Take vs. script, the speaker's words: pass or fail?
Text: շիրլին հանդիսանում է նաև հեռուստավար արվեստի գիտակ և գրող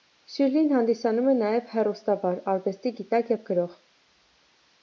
pass